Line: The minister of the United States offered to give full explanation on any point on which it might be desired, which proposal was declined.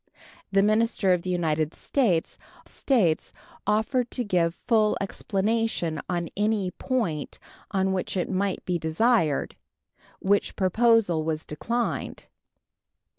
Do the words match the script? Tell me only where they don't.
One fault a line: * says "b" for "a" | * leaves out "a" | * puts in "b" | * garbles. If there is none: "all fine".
* puts in "States"